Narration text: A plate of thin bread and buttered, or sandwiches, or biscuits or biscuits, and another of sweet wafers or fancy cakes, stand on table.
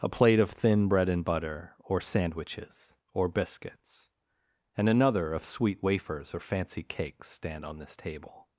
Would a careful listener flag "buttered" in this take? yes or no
yes